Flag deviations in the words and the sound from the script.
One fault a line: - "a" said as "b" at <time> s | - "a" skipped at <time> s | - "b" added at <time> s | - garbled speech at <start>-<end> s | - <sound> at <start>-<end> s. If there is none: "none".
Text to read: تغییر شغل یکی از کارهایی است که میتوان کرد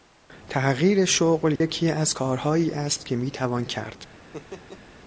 - dropout at 1.6-1.6 s
- laugh at 4.3-4.8 s